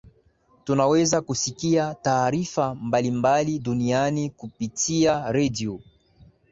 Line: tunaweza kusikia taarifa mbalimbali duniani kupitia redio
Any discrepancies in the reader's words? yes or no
no